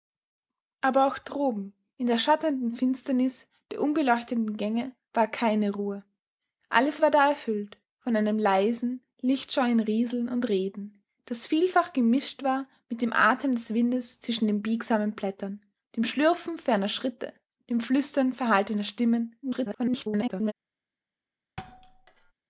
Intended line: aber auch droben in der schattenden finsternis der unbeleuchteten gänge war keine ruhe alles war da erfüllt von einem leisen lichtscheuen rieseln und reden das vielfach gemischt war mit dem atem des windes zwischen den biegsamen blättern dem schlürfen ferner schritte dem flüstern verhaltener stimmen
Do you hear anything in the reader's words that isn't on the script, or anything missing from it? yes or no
yes